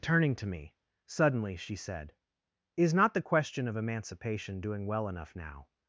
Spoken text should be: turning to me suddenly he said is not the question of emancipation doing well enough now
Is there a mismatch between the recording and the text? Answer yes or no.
yes